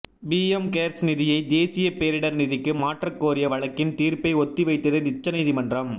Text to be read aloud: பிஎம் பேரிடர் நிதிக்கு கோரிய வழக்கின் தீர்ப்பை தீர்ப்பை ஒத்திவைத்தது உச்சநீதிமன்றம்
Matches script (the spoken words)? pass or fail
fail